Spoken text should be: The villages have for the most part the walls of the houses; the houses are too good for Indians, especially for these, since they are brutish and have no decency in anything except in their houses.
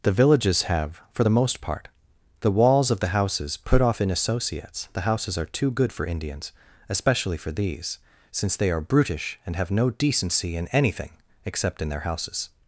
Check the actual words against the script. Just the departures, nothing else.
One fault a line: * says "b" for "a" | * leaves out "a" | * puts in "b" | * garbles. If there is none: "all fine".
* puts in "put off in associates"